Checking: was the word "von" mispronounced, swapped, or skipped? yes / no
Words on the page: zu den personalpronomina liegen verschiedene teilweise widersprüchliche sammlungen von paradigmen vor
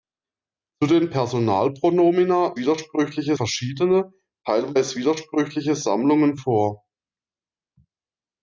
yes